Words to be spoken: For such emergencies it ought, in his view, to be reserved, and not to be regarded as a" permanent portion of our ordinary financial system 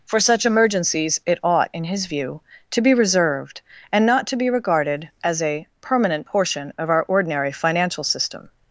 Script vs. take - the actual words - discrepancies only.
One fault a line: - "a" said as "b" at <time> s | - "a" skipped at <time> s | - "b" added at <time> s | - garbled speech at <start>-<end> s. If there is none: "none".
none